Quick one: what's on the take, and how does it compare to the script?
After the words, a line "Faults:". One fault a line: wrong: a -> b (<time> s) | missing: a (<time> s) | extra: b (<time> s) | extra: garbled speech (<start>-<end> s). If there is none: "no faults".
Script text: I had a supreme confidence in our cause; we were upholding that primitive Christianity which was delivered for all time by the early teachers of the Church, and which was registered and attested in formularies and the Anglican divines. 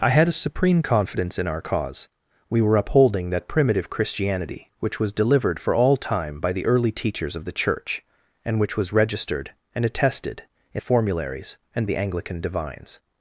I had a supreme confidence in our cause; we were upholding that primitive Christianity which was delivered for all time by the early teachers of the Church, and which was registered and attested in formularies and the Anglican divines.
Faults:
no faults